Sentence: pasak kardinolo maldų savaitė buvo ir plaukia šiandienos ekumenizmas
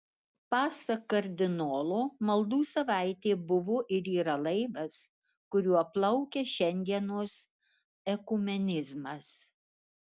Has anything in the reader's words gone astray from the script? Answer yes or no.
yes